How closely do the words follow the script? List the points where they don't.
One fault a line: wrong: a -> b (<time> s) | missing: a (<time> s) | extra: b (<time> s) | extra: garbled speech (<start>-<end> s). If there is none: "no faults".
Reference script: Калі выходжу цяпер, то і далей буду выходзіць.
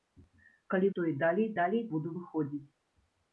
missing: выходжу цяпер (0.9 s)
extra: далей (1.6 s)